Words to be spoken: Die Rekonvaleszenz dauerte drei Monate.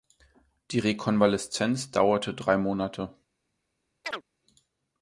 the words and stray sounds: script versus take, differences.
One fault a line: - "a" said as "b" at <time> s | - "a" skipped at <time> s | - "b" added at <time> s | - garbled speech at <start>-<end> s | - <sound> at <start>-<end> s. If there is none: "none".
- chirp at 4.0-4.2 s